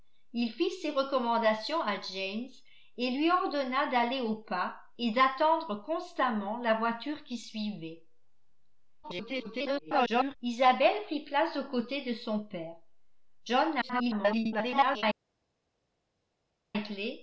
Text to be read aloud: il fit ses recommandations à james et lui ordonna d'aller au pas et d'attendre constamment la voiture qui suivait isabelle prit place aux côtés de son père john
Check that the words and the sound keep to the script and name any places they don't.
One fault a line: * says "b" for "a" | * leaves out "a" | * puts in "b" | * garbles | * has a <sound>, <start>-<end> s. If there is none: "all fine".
* garbles
* garbles